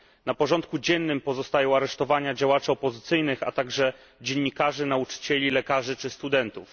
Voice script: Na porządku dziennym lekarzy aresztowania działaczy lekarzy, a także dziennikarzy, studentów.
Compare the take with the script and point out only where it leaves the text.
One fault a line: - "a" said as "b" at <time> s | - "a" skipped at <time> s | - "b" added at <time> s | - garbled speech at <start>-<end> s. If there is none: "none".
- "lekarzy" said as "pozostają" at 1.2 s
- "lekarzy" said as "opozycyjnych" at 2.7 s
- "nauczycieli lekarzy czy" added at 4.8 s